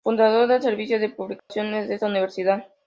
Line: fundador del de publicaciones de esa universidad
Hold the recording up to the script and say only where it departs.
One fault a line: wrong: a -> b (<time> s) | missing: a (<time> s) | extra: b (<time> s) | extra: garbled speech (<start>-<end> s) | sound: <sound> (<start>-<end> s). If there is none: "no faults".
extra: servicio (0.6 s)
sound: dropout (1.4-1.5 s)
wrong: esa -> esta (1.9 s)